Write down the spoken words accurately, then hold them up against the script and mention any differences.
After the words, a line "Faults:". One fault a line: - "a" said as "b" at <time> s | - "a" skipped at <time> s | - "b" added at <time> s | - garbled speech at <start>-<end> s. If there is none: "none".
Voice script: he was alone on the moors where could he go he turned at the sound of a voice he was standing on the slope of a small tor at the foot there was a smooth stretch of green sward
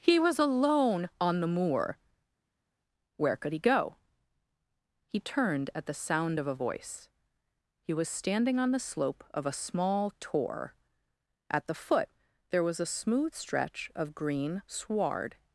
he was alone on the moor where could he go he turned at the sound of a voice he was standing on the slope of a small tor at the foot there was a smooth stretch of green sward
Faults:
- "moors" said as "moor" at 1.5 s